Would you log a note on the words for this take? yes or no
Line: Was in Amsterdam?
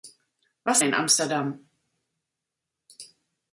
no